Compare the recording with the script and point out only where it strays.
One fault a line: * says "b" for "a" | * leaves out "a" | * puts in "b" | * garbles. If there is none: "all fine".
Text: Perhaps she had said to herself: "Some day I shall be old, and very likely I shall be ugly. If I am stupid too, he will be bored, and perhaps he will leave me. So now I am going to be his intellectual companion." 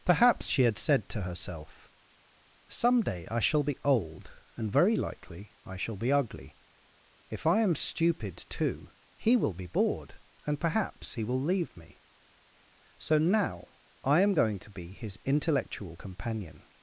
all fine